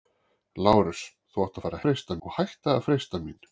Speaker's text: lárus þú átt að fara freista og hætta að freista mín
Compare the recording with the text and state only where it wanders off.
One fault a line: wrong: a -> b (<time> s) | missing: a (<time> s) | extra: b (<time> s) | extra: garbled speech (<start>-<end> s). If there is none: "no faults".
no faults